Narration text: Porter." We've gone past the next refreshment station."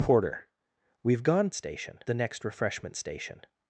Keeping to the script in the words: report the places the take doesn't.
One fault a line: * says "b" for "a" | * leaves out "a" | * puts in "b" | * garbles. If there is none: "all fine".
* says "station" for "past"